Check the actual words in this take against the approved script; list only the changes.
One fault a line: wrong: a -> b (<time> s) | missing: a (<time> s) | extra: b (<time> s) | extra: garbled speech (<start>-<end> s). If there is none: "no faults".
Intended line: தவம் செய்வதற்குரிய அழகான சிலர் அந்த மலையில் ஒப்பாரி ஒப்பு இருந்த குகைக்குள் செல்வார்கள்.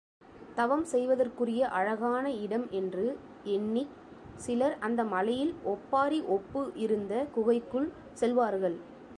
extra: இடம் என்று எண்ணிச் (2.4 s)